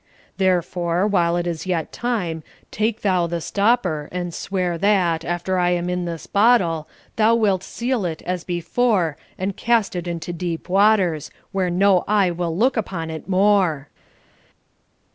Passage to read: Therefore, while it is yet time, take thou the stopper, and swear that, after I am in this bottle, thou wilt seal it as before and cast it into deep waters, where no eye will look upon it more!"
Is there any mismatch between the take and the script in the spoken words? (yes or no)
no